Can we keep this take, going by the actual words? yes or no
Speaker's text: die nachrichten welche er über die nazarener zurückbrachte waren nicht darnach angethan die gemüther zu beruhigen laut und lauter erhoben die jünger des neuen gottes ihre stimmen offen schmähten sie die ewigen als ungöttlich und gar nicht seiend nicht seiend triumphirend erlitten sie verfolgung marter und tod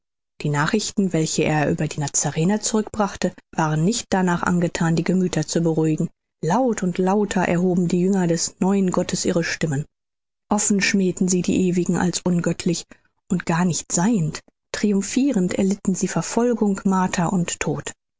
no